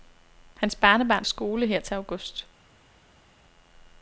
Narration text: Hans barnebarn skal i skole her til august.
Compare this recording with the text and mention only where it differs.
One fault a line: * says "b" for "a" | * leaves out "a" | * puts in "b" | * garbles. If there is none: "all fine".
* leaves out "skal"